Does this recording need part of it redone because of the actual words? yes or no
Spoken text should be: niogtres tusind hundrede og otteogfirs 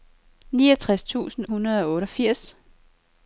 no